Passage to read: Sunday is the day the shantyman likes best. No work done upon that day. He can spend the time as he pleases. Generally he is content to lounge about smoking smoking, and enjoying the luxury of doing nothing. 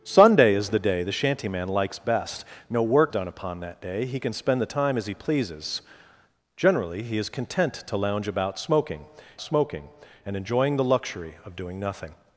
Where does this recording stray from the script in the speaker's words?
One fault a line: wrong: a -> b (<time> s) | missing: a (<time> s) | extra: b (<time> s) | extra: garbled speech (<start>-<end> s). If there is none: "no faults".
no faults